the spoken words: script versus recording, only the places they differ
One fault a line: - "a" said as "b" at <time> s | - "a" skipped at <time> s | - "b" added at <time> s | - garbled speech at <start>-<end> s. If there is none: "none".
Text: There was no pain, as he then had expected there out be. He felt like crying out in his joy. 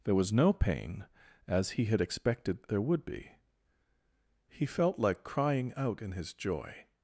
- "then" skipped at 1.9 s
- "out" said as "would" at 2.8 s